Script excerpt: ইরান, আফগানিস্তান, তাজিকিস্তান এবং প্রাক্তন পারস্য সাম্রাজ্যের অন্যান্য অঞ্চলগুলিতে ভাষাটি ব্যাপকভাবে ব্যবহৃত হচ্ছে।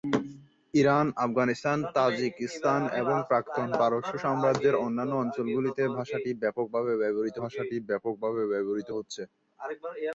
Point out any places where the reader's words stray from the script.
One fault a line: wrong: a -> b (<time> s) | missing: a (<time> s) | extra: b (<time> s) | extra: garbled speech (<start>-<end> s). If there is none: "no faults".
extra: ভাষাটি ব্যাপকভাবে ব্যবহৃত (7.4 s)